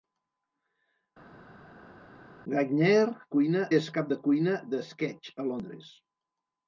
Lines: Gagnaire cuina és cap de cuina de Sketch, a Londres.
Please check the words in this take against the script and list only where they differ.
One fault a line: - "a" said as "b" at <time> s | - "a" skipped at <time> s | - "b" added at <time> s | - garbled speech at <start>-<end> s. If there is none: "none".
none